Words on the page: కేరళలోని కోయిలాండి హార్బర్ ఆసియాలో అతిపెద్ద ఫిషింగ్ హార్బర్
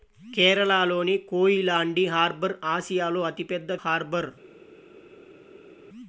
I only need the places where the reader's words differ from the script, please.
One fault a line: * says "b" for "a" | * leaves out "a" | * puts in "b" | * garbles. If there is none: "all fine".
* leaves out "ఫిషింగ్"